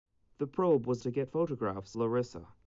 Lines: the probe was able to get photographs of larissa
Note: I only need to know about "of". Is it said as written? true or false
false